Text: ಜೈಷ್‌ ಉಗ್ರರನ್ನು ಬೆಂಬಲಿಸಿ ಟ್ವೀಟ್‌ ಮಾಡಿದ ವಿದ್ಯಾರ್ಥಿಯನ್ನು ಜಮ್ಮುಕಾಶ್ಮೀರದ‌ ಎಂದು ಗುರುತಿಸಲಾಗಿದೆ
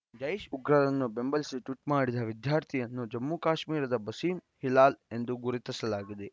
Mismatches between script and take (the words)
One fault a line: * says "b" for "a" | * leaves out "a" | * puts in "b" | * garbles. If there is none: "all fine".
* puts in "ಬಸೀಂ ಹಿಲಾಲ್"